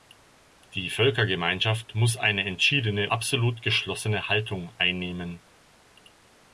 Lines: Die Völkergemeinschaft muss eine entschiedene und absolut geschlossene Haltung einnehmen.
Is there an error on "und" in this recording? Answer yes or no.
yes